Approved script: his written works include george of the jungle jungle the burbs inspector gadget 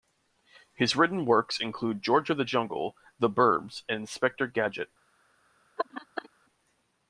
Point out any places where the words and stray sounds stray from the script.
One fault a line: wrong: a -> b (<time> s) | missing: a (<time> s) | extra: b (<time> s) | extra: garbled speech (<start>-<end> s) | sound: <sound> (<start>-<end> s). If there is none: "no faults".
missing: jungle (3.0 s)
extra: and (3.9 s)
sound: laugh (5.8-6.3 s)